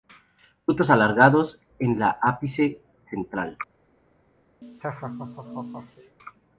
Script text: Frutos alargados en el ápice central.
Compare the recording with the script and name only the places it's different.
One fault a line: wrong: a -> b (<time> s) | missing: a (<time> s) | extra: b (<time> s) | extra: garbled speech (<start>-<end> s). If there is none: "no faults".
no faults